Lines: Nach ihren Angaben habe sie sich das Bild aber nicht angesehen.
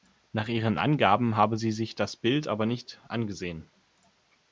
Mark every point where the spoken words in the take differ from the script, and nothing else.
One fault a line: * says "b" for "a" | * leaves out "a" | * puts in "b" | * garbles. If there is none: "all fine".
all fine